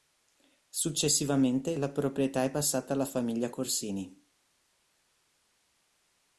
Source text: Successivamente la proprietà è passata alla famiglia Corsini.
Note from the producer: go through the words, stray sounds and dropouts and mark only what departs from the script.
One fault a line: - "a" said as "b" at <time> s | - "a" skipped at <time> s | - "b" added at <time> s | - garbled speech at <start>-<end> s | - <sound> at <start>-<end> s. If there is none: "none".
none